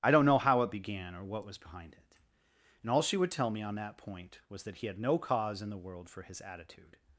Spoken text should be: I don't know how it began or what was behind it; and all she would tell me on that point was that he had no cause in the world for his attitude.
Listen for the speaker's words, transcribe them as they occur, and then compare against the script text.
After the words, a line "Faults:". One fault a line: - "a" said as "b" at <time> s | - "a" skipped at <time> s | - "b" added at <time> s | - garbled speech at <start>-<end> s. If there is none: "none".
I don't know how it began or what was behind it; and all she would tell me on that point was that he had no cause in the world for his attitude.
Faults:
none